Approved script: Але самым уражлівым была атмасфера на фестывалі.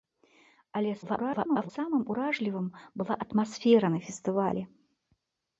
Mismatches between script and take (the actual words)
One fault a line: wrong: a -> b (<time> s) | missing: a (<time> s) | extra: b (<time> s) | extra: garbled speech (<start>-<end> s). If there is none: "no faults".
extra: garbled speech (1.0-1.7 s)